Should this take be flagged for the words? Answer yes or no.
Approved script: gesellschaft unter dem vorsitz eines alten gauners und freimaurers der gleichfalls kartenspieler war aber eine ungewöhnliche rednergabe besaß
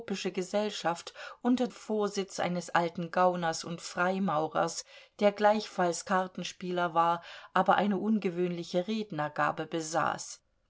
yes